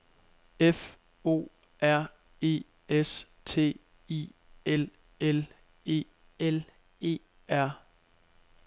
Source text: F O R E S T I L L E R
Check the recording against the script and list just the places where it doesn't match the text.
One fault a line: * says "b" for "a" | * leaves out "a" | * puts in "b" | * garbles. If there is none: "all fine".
* puts in "L E"